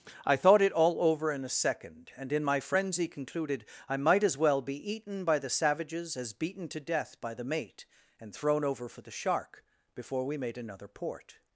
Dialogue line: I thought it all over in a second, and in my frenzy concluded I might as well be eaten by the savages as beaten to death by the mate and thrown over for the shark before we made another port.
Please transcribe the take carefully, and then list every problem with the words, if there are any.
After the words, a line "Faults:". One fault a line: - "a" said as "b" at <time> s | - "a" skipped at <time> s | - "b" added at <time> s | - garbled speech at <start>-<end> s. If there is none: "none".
I thought it all over in a second, and in my frenzy concluded I might as well be eaten by the savages as beaten to death by the mate and thrown over for the shark before we made another port.
Faults:
none